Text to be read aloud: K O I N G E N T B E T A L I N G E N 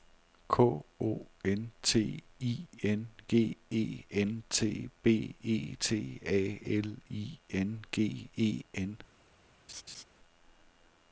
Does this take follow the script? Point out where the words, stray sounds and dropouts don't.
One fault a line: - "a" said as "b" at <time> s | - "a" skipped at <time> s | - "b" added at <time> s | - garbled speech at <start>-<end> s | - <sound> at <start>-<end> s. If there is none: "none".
- "N T" added at 1.4 s
- laugh at 9.7-10.0 s